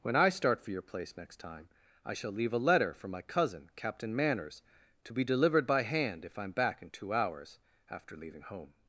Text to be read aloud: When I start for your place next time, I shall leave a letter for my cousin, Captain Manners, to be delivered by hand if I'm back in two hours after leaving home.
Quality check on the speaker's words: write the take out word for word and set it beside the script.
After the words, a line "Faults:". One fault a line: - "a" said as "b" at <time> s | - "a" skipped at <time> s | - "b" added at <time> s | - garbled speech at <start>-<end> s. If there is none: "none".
When I start for your place next time, I shall leave a letter for my cousin, Captain Manners, to be delivered by hand if I'm back in two hours after leaving home.
Faults:
none